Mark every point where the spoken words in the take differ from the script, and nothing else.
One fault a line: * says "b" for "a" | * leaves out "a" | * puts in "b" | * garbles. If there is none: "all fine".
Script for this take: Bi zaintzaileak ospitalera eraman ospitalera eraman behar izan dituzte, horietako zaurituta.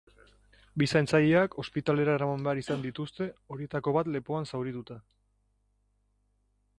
* leaves out "ospitalera eraman"
* puts in "bat lepoan"